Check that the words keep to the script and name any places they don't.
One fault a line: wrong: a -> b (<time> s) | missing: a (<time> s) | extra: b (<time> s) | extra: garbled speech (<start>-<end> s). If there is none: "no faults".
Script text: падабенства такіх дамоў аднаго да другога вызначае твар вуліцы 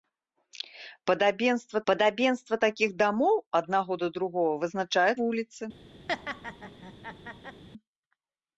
extra: падабенства (1.9 s)
missing: твар (5.1 s)